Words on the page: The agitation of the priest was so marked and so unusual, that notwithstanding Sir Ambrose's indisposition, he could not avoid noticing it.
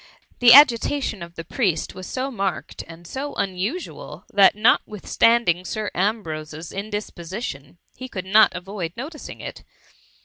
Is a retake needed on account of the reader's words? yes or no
no